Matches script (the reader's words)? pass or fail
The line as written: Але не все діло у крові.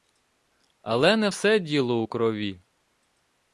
pass